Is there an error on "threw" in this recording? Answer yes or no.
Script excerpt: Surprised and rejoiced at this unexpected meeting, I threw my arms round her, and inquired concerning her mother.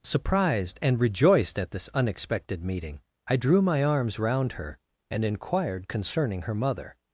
yes